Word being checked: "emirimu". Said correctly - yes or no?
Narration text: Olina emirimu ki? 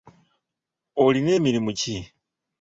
yes